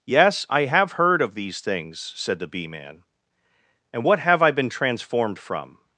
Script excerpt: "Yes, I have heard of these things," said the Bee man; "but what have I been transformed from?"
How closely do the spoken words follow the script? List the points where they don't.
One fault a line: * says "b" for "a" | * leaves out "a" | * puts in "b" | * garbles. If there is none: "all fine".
* says "and" for "but"